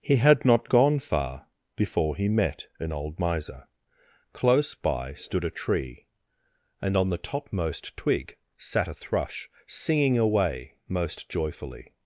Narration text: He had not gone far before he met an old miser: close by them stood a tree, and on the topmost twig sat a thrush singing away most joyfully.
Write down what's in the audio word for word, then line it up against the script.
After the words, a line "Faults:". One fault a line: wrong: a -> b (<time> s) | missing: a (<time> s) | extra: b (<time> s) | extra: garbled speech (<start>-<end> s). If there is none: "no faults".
He had not gone far before he met an old miser: close by stood a tree, and on the topmost twig sat a thrush singing away most joyfully.
Faults:
missing: them (5.1 s)